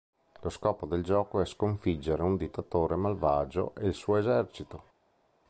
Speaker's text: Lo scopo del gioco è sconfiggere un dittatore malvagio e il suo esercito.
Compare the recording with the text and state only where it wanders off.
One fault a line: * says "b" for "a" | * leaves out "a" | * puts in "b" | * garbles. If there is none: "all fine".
all fine